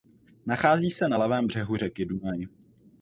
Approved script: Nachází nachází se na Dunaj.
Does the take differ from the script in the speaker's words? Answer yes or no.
yes